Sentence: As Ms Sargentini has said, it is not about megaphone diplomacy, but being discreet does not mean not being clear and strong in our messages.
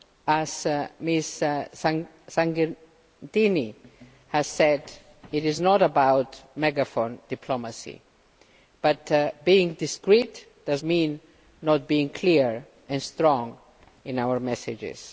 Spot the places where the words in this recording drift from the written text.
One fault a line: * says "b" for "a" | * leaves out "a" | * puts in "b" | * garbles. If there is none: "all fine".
* leaves out "not"